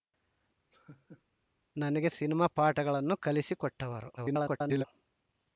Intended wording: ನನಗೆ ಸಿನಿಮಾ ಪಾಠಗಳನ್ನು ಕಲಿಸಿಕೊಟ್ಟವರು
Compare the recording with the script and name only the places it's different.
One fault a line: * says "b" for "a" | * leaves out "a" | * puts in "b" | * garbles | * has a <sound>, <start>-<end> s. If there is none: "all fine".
* has a laugh, 0.7-1.2 s
* garbles